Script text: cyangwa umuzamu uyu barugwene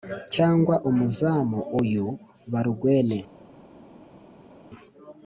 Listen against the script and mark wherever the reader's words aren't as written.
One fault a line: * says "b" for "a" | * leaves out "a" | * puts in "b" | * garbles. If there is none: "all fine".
all fine